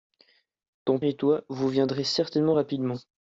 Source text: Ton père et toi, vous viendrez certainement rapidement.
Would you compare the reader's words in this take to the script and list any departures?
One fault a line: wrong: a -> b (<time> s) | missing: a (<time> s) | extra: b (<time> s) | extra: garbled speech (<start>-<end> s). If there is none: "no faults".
missing: père (1.0 s)